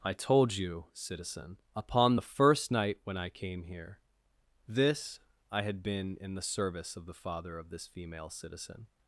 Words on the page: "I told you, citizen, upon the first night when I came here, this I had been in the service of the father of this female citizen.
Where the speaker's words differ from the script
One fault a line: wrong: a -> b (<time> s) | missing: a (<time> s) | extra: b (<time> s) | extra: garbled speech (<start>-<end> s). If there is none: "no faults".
no faults